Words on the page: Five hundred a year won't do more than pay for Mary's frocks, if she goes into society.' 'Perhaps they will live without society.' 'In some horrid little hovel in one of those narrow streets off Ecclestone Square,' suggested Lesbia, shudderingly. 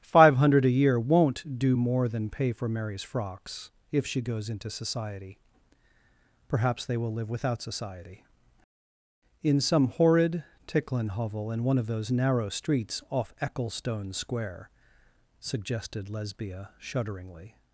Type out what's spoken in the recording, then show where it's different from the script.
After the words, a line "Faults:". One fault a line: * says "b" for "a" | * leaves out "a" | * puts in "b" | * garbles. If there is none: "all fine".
Five hundred a year won't do more than pay for Mary's frocks, if she goes into society.' 'Perhaps they will live without society.' 'In some horrid ticklin hovel in one of those narrow streets off Ecclestone Square,' suggested Lesbia, shudderingly.
Faults:
* says "ticklin" for "little"